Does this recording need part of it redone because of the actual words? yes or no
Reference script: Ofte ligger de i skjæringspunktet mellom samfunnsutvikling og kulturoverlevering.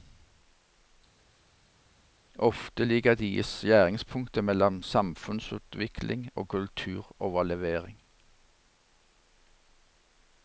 no